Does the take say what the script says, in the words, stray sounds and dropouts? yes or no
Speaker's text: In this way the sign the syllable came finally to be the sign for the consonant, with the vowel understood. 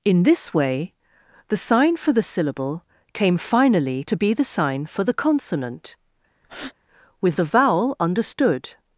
no